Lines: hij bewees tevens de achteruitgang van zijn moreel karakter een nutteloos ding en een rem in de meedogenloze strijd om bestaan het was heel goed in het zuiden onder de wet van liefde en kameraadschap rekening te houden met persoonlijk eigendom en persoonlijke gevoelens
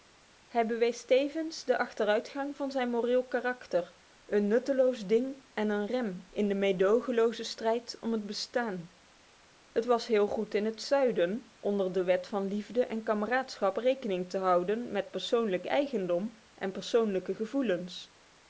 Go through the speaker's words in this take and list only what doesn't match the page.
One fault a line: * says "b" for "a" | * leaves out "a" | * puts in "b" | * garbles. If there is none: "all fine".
* puts in "het"